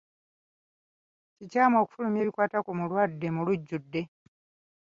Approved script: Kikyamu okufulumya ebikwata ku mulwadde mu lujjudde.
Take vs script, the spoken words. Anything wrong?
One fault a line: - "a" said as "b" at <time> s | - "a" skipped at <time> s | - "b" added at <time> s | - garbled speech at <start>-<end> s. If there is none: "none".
none